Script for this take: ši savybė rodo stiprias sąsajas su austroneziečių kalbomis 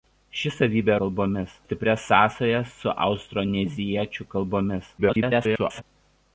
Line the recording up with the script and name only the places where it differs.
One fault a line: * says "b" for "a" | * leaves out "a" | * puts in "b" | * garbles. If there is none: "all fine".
* says "kalbomis" for "rodo"
* garbles